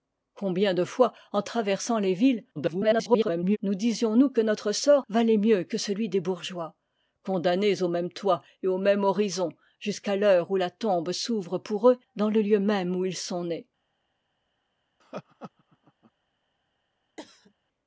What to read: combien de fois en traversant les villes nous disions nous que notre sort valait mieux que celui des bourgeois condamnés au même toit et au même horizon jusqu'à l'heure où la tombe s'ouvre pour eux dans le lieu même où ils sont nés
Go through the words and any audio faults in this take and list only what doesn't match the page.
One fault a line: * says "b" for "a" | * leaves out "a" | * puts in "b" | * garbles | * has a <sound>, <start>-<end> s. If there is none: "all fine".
* garbles
* has a laugh, 15.0-16.1 s
* has a cough, 17.2-17.5 s